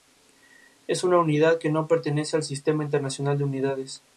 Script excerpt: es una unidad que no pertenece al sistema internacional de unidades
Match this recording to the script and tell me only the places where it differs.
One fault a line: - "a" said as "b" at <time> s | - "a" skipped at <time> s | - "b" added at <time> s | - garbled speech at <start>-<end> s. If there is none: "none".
none